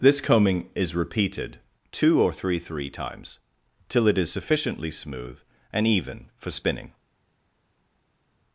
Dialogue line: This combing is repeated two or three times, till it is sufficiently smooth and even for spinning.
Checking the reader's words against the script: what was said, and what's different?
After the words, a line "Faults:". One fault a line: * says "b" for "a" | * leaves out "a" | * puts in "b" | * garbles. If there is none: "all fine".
This combing is repeated two or three three times, till it is sufficiently smooth and even for spinning.
Faults:
* puts in "three"